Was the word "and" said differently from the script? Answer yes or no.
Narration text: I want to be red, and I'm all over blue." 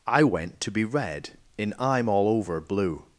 yes